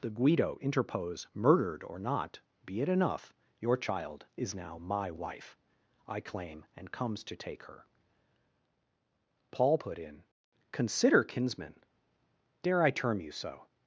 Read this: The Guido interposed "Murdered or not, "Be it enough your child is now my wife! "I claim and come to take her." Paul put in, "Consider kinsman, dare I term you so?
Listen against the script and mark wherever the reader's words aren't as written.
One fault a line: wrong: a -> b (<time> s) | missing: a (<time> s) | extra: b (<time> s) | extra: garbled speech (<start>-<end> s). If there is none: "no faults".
wrong: interposed -> interpose (0.6 s)
wrong: come -> comes (6.9 s)